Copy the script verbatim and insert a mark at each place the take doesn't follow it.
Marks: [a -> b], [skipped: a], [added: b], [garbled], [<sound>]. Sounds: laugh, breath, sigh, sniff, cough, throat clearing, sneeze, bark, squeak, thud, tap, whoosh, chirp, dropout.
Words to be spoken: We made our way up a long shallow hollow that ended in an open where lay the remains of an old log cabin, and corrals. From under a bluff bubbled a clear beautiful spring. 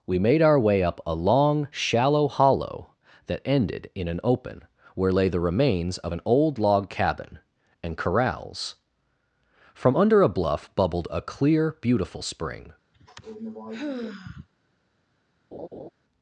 We made our way up a long shallow hollow that ended in an open where lay the remains of an old log cabin, and corrals. From under a bluff bubbled a clear beautiful spring. [sigh] [laugh]